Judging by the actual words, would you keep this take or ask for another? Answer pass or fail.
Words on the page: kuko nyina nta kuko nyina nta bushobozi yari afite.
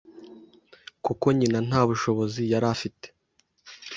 fail